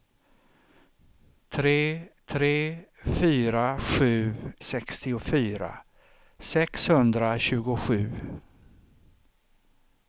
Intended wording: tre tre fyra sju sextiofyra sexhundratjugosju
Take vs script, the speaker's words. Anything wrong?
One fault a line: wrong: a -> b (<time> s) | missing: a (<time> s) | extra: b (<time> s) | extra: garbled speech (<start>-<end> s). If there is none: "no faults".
no faults